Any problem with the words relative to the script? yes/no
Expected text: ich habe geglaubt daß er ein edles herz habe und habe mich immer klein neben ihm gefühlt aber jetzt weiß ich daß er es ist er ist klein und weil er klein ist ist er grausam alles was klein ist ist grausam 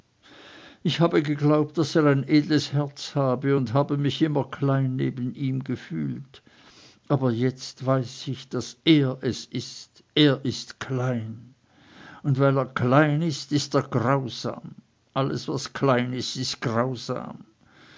no